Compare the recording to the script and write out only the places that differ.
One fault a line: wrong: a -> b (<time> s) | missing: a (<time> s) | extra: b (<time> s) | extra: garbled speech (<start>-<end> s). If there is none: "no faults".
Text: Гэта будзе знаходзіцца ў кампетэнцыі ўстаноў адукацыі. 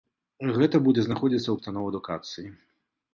missing: кампетэнцыі (1.6 s)